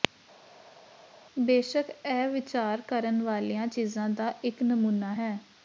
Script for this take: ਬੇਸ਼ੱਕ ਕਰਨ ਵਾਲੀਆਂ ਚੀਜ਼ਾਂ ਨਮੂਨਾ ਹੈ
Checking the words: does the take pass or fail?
fail